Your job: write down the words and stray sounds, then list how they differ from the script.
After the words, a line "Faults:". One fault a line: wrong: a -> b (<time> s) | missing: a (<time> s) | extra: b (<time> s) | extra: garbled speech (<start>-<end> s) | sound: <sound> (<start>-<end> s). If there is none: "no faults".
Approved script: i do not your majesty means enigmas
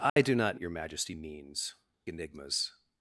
i do not your majesty means enigmas
Faults:
sound: dropout (0.1-0.2 s)